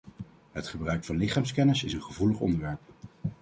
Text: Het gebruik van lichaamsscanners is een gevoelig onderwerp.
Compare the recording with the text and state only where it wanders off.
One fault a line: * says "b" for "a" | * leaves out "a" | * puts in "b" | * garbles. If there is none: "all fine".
all fine